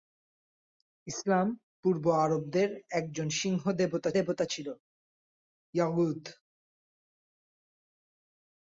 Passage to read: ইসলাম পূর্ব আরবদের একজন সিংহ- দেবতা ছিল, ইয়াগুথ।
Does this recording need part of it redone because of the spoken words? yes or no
yes